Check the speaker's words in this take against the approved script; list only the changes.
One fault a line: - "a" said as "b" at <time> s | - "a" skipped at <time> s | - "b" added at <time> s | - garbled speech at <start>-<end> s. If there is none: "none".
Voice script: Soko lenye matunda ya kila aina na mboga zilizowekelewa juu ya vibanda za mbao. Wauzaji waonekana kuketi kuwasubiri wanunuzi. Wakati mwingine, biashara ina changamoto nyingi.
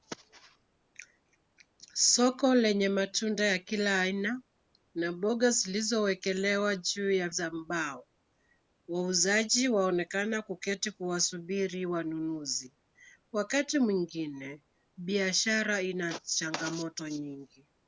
- "vibanda" skipped at 7.3 s